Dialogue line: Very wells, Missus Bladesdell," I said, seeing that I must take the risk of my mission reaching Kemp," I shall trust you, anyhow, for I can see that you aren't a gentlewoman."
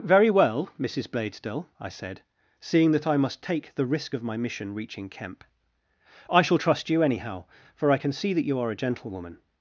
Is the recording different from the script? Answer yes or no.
yes